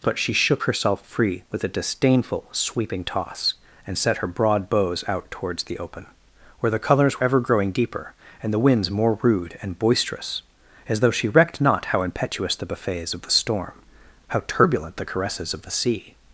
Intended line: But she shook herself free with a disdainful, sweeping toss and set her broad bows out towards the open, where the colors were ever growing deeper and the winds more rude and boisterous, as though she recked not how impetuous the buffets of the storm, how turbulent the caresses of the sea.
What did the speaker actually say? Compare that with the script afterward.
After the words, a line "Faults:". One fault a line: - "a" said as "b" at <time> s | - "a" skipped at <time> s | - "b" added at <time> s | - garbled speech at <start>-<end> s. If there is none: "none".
But she shook herself free with a disdainful, sweeping toss and set her broad bows out towards the open, where the colors ever growing deeper and the winds more rude and boisterous, as though she recked not how impetuous the buffets of the storm, how turbulent the caresses of the sea.
Faults:
- "were" skipped at 7.2 s